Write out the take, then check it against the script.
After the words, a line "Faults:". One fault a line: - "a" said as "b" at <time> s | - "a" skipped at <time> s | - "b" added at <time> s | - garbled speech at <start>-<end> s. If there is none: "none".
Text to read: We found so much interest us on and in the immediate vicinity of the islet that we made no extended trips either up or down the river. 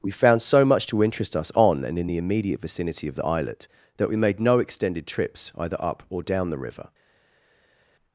We found so much to interest us on and in the immediate vicinity of the islet that we made no extended trips either up or down the river.
Faults:
- "to" added at 0.9 s